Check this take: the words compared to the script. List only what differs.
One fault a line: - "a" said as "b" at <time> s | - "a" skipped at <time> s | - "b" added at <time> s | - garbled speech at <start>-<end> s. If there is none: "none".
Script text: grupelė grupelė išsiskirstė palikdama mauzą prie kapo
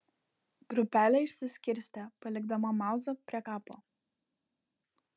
- "grupelė" skipped at 1.2 s